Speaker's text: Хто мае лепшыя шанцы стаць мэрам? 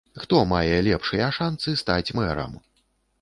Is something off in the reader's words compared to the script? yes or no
no